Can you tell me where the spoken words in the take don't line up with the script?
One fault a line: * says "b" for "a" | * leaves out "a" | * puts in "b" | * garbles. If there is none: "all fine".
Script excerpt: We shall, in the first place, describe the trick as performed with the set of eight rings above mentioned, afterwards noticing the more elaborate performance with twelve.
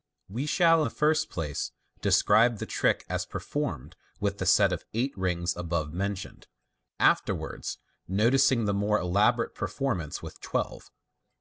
* leaves out "in"